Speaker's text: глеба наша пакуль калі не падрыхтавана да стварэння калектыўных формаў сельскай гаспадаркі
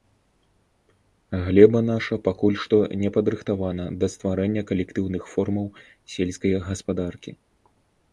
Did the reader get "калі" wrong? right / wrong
wrong